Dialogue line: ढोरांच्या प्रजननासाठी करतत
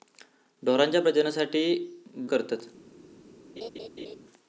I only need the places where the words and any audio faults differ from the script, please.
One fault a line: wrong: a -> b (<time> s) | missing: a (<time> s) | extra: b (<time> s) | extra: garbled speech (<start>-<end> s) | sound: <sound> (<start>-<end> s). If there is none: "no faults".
sound: laugh (3.6-4.2 s)